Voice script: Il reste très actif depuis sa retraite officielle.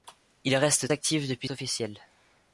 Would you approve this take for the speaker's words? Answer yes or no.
no